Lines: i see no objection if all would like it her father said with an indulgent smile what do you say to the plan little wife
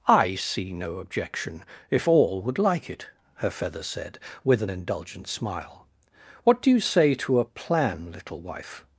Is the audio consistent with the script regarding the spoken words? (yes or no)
no